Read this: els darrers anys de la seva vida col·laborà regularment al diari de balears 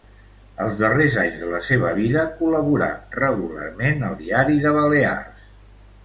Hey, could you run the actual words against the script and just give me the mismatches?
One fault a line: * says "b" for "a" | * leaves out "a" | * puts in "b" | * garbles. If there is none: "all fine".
all fine